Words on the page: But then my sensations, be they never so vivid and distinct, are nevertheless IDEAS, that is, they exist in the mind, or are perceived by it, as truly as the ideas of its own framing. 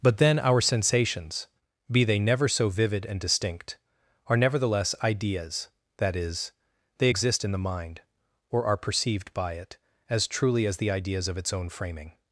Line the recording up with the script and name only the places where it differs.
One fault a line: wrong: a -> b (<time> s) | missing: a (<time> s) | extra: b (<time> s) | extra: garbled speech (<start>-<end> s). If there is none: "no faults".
wrong: my -> our (0.4 s)